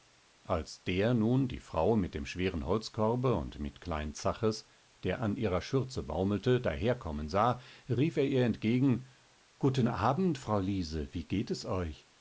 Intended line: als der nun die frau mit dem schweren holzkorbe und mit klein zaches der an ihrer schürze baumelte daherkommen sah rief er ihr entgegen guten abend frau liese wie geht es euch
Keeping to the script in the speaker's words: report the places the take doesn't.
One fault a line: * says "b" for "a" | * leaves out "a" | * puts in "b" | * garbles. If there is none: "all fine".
all fine